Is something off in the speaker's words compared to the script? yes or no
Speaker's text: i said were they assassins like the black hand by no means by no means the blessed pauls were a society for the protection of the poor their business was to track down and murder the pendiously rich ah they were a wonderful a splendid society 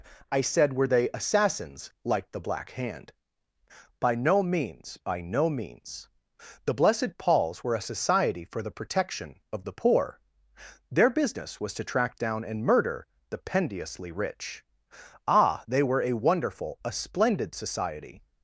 no